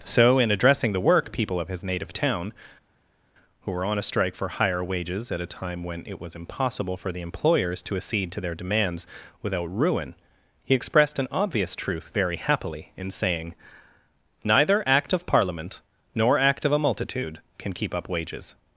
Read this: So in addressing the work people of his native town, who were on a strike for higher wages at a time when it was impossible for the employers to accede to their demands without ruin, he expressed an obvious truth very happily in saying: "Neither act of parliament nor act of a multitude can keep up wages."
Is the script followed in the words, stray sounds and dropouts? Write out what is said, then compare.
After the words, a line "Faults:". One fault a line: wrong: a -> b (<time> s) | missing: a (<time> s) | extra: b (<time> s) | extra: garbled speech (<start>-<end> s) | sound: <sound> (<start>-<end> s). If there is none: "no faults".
So in addressing the work people of his native town, who were on a strike for higher wages at a time when it was impossible for the employers to accede to their demands without ruin, he expressed an obvious truth very happily in saying: "Neither act of parliament nor act of a multitude can keep up wages."
Faults:
no faults